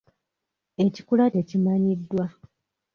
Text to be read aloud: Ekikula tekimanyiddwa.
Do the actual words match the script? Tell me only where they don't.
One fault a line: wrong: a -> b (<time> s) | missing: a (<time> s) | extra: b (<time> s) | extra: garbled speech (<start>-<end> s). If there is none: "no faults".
no faults